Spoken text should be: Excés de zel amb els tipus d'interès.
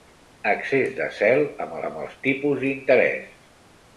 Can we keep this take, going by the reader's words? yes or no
no